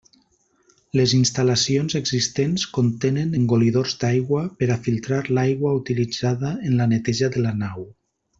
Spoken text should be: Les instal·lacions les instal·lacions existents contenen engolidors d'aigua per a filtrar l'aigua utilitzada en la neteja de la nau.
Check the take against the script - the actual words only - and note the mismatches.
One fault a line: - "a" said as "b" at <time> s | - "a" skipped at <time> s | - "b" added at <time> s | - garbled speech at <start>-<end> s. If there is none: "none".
- "les instal·lacions" skipped at 1.9 s